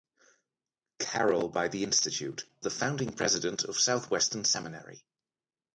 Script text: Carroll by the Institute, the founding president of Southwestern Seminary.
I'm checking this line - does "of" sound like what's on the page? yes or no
yes